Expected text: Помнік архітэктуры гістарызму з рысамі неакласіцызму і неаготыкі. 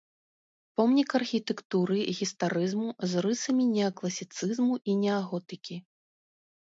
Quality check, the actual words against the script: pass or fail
pass